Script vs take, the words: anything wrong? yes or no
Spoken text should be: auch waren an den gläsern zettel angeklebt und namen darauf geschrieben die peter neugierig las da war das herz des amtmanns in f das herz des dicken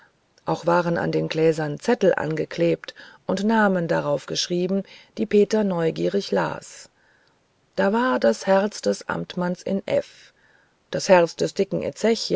no